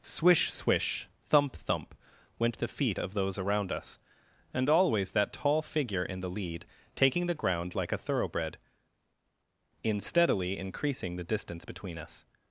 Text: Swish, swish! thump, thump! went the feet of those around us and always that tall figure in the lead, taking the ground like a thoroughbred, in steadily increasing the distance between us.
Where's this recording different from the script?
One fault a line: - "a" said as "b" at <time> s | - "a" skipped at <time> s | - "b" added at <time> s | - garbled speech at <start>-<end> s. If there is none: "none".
none